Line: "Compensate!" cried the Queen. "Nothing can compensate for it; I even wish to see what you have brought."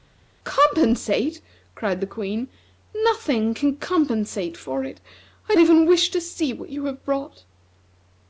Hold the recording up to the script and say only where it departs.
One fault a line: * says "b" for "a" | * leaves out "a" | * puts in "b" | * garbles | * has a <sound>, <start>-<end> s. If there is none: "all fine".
all fine